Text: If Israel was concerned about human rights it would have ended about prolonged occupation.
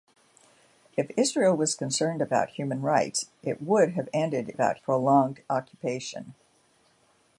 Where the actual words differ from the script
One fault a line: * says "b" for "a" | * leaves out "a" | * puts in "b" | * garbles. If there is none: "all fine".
all fine